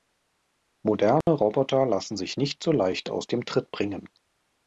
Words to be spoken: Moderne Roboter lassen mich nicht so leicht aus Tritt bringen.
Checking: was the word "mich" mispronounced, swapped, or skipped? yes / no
yes